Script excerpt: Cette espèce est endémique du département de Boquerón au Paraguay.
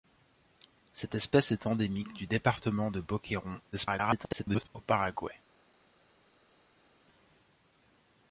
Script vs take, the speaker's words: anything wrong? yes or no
yes